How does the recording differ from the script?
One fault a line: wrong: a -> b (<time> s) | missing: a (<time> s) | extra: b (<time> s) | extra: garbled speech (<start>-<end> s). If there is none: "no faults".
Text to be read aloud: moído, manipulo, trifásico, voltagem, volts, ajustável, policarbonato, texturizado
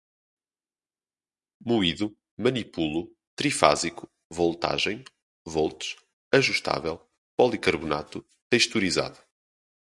no faults